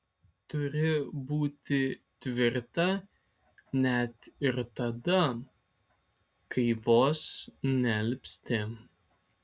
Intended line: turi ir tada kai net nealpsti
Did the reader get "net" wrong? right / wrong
wrong